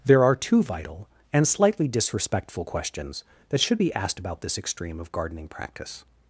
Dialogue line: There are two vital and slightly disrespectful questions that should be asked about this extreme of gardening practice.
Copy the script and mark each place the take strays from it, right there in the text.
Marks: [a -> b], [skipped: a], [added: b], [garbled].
There are two vital and slightly disrespectful questions that should be asked about this extreme of gardening practice.